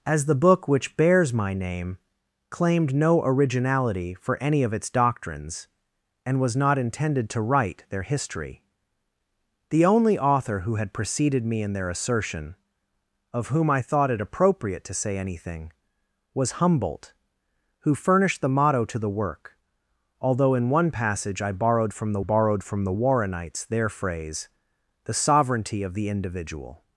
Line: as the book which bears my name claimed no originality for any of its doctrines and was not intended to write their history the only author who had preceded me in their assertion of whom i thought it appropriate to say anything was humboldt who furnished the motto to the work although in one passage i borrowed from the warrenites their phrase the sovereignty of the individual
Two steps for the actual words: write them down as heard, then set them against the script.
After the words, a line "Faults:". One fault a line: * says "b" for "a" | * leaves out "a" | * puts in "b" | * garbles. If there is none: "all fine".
as the book which bears my name claimed no originality for any of its doctrines and was not intended to write their history the only author who had preceded me in their assertion of whom i thought it appropriate to say anything was humboldt who furnished the motto to the work although in one passage i borrowed from the borrowed from the warrenites their phrase the sovereignty of the individual
Faults:
* puts in "borrowed from the"